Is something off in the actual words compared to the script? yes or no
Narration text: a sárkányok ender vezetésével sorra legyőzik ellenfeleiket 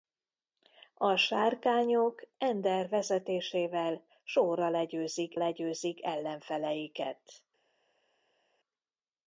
yes